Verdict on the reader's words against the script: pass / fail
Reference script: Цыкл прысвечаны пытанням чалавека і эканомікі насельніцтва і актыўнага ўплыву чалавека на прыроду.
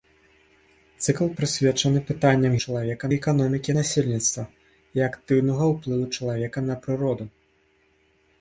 pass